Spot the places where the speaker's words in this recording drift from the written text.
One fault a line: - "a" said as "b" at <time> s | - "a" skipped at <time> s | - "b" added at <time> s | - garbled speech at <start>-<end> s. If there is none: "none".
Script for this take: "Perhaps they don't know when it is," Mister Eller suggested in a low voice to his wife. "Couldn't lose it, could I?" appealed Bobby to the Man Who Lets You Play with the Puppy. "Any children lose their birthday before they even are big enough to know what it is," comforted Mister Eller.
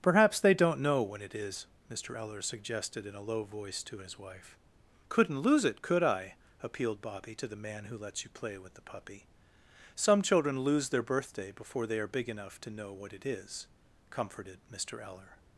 - "Any" said as "Some" at 10.0 s
- "even" skipped at 12.0 s